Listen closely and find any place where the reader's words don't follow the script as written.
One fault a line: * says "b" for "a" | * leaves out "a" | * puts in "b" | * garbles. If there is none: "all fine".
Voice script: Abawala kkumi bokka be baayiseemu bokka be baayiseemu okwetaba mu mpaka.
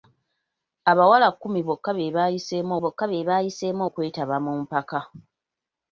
all fine